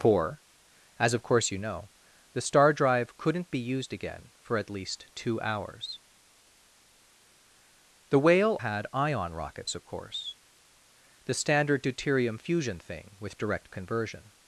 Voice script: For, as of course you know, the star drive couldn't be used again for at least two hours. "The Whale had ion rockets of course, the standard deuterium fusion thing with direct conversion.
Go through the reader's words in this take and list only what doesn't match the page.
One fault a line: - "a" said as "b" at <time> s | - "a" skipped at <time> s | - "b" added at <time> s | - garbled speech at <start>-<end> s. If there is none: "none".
none